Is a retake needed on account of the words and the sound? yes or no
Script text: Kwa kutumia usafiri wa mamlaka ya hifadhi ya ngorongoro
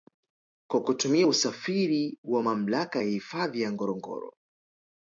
no